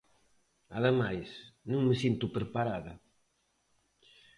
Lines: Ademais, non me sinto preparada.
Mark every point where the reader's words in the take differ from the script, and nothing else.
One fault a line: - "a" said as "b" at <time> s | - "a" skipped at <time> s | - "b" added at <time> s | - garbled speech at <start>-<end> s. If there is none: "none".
none